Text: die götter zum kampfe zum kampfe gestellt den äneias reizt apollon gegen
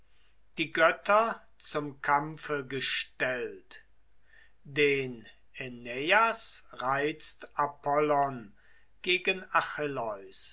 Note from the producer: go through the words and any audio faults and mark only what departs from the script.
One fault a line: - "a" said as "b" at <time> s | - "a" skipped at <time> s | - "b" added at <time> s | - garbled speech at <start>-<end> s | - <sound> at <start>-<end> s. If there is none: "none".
- "zum kampfe" skipped at 2.6 s